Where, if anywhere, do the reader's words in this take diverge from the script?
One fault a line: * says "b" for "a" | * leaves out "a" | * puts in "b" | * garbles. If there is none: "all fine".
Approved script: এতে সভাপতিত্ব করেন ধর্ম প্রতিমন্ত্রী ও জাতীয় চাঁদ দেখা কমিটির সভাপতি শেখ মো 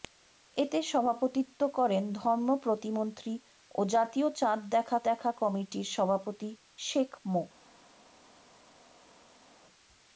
* puts in "দেখা"